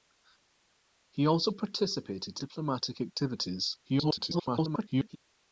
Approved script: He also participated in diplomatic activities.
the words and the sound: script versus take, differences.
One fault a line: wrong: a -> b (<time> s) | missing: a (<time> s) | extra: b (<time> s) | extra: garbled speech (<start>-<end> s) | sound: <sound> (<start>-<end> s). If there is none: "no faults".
missing: in (2.4 s)
extra: garbled speech (3.8-5.2 s)